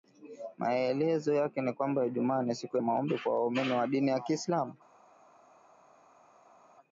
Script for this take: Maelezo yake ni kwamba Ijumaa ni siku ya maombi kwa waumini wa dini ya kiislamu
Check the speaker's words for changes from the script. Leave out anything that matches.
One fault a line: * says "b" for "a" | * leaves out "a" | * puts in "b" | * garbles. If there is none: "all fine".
* leaves out "ya"